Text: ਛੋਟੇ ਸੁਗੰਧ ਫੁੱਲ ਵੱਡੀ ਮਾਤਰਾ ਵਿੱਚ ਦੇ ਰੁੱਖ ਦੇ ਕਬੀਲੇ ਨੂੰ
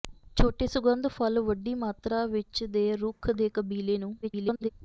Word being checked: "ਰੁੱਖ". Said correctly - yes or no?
yes